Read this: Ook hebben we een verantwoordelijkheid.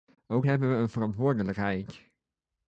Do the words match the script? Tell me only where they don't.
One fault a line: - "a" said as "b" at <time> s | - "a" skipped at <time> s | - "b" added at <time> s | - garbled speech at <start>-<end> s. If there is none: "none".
none